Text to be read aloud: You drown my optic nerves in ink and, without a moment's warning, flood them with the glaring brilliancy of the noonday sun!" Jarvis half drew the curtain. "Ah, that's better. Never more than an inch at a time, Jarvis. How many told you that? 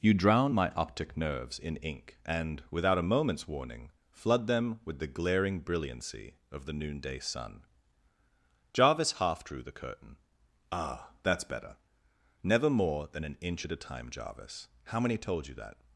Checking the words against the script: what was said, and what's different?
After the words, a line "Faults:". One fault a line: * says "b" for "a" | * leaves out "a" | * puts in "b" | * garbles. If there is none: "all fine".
You drown my optic nerves in ink and, without a moment's warning, flood them with the glaring brilliancy of the noonday sun!" Jarvis half drew the curtain. "Ah, that's better. Never more than an inch at a time, Jarvis. How many told you that?
Faults:
all fine